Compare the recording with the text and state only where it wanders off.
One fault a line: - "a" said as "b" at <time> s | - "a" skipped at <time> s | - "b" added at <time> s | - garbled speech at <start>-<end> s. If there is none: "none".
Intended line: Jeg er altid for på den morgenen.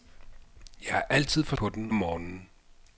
none